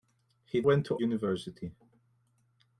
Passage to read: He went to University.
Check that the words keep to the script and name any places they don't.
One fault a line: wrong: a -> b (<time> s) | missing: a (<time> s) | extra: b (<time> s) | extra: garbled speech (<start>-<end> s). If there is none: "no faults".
no faults